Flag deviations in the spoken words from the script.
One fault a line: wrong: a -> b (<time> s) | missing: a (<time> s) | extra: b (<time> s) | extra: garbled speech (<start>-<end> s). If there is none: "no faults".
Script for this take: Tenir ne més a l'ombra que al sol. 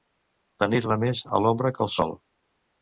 no faults